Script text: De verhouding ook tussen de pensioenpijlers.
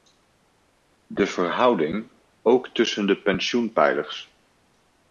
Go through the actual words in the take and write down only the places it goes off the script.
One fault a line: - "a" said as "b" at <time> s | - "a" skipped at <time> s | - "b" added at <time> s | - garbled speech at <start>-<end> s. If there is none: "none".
none